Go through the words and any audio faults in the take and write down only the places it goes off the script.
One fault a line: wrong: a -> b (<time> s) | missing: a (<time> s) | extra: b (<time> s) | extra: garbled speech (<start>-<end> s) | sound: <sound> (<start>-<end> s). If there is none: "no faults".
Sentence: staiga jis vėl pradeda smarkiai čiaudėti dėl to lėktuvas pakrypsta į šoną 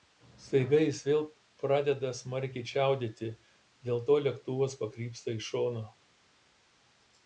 no faults